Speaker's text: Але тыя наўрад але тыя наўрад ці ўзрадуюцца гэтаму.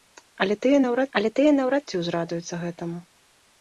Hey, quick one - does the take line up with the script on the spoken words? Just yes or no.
yes